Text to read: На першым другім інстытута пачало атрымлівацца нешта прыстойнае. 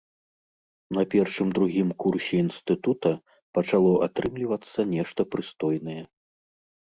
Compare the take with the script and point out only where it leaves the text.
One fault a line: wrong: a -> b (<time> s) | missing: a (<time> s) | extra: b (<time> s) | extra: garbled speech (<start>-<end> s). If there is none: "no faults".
extra: курсе (2.0 s)